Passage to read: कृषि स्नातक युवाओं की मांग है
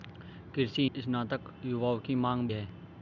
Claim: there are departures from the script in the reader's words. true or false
false